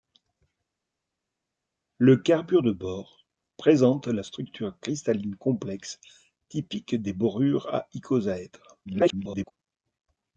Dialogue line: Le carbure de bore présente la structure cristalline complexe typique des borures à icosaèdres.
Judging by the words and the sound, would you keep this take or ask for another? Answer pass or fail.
fail